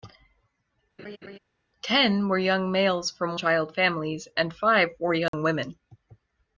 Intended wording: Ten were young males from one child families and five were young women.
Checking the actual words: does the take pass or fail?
fail